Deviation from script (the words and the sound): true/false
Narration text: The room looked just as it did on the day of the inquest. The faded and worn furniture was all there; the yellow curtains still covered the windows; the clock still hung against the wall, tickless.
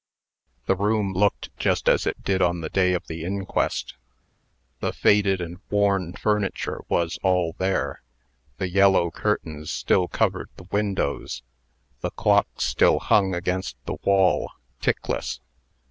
false